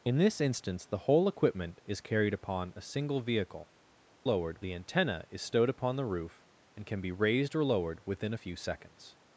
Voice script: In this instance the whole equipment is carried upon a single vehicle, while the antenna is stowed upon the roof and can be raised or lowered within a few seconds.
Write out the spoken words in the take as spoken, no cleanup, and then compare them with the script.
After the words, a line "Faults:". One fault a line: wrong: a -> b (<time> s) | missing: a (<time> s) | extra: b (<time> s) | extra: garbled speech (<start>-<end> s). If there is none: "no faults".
In this instance the whole equipment is carried upon a single vehicle, lowered the antenna is stowed upon the roof and can be raised or lowered within a few seconds.
Faults:
wrong: while -> lowered (4.2 s)